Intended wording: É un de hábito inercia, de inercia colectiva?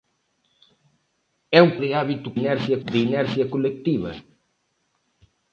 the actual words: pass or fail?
pass